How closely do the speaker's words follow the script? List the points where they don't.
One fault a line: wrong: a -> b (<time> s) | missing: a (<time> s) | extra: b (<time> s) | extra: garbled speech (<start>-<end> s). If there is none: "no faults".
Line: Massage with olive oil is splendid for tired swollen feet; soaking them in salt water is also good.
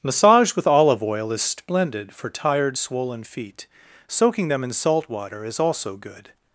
no faults